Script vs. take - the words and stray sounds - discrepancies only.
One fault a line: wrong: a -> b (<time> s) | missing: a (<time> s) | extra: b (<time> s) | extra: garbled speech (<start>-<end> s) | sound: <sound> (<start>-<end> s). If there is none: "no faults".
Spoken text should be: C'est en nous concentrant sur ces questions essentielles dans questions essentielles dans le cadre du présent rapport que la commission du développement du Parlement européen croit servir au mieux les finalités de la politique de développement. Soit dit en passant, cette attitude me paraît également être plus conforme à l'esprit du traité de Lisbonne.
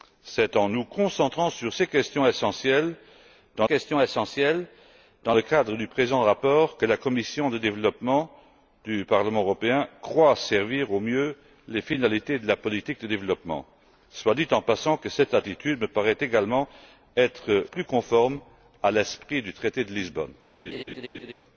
sound: laugh (20.7-21.3 s)